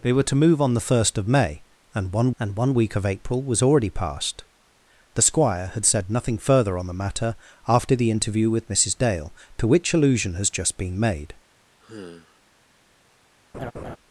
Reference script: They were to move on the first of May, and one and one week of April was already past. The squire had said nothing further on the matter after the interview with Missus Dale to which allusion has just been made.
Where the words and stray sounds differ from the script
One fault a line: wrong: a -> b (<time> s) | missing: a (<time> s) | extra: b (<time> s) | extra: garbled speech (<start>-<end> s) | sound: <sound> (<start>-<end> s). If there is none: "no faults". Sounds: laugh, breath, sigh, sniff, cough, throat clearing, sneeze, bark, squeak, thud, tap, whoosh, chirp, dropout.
sound: sigh (11.8-12.4 s)
sound: laugh (13.5-14.0 s)